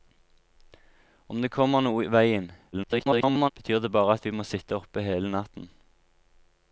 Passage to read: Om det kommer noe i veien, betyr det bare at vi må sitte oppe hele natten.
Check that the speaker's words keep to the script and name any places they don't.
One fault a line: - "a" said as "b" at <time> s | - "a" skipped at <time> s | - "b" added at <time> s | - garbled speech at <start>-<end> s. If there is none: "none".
- garbled speech at 2.7-3.5 s